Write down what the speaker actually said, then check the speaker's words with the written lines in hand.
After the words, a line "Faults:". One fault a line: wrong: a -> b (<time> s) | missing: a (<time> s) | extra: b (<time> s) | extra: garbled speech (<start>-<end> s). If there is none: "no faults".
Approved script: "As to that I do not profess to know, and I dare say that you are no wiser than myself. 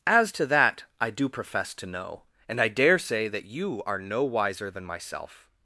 "As to that I do profess to know, and I dare say that you are no wiser than myself.
Faults:
missing: not (1.3 s)